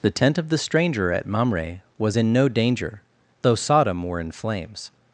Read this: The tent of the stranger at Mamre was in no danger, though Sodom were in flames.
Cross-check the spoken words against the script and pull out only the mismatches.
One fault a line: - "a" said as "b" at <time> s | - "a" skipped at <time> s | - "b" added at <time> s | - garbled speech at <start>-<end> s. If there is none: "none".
none